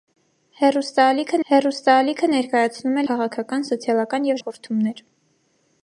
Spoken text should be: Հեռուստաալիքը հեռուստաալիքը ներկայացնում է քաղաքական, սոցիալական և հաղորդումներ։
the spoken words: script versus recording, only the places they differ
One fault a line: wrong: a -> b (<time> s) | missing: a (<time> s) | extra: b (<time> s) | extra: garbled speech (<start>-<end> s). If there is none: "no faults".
no faults